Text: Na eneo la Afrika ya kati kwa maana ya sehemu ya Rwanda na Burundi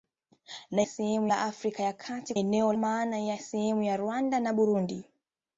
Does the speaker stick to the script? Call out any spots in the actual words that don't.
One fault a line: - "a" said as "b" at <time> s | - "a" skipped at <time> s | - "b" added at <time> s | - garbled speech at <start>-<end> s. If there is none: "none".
- "eneo" said as "sehemu" at 0.8 s
- "kwa" said as "eneo" at 2.3 s